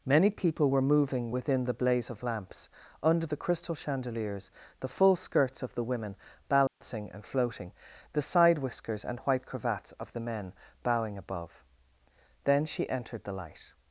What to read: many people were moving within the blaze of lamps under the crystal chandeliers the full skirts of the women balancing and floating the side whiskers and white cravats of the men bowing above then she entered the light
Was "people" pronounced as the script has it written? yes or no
yes